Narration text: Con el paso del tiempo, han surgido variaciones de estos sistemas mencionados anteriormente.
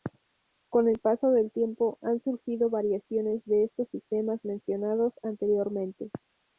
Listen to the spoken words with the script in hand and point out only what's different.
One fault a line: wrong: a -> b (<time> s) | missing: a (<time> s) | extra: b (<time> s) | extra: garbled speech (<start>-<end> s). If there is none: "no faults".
no faults